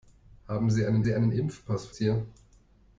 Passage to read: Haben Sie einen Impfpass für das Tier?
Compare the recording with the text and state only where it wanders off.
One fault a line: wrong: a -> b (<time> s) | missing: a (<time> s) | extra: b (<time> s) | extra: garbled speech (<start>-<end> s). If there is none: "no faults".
extra: Sie einen (1.0 s)
missing: das (2.0 s)